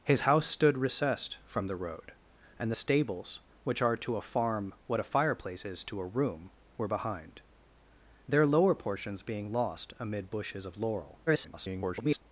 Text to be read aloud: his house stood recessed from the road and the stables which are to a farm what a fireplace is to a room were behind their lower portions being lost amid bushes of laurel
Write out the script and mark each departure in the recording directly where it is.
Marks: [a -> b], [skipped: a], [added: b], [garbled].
his house stood recessed from the road and the stables which are to a farm what a fireplace is to a room were behind their lower portions being lost amid bushes of laurel [garbled]